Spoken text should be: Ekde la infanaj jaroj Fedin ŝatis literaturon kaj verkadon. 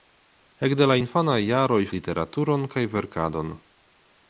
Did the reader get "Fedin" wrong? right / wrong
wrong